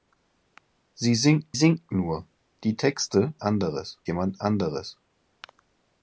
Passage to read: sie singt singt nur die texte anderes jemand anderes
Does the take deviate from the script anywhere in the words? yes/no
no